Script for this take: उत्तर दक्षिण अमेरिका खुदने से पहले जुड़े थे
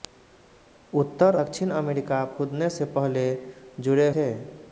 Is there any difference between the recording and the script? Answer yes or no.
no